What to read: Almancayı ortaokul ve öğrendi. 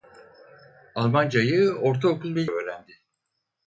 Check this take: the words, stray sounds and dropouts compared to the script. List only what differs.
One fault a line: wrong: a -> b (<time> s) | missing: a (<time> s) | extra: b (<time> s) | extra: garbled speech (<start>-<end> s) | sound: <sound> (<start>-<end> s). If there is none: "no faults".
no faults